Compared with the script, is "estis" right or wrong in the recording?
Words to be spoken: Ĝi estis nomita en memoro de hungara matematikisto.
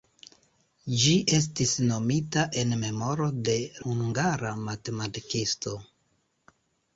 right